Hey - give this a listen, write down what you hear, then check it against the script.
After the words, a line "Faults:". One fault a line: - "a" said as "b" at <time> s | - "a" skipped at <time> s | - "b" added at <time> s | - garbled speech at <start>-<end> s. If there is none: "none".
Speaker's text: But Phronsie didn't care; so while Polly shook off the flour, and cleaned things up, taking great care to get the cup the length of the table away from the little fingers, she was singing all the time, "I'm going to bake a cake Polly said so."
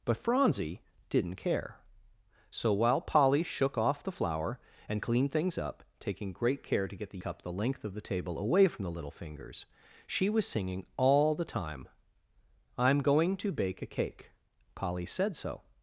But Phronsie didn't care; so while Polly shook off the flour, and cleaned things up, taking great care to get the cup the length of the table away from the little fingers, she was singing all the time, "I'm going to bake a cake Polly said so."
Faults:
none